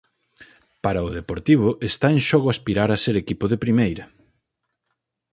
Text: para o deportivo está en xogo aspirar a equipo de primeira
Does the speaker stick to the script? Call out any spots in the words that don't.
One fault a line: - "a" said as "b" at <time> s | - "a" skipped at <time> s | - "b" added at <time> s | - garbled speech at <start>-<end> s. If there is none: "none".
- "ser" added at 3.0 s